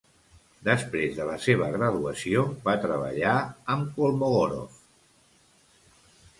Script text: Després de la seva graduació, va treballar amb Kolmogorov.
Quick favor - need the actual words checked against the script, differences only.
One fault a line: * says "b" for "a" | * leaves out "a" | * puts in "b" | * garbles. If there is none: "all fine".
all fine